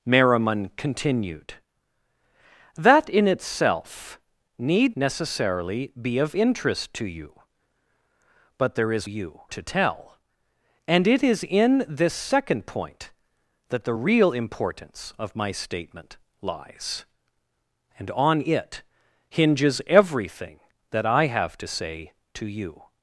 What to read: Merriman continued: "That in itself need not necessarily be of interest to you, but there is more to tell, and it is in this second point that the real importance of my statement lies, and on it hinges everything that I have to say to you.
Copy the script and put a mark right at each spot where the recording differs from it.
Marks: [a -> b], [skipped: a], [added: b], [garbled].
Merriman continued: "That in itself need [skipped: not] necessarily be of interest to you, but there is [more -> you] to tell, and it is in this second point that the real importance of my statement lies, and on it hinges everything that I have to say to you.